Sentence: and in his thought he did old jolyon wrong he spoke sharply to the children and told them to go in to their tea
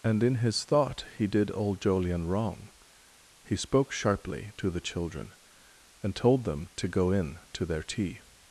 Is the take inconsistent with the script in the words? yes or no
no